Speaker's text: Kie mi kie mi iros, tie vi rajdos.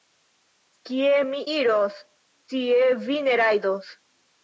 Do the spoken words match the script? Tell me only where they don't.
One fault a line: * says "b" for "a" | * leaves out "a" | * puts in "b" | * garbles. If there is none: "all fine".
* leaves out "kie mi"
* puts in "ne"